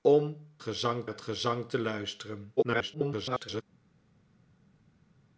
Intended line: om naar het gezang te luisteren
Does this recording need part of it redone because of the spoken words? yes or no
yes